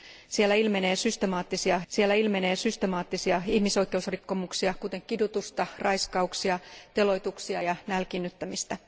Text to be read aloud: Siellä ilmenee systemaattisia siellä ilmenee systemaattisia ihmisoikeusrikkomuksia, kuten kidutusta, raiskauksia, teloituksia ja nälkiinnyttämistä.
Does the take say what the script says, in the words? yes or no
yes